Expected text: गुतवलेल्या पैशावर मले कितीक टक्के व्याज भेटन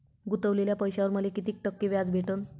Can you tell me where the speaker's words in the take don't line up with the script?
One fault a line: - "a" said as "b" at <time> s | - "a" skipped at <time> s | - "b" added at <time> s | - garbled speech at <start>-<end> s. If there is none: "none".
none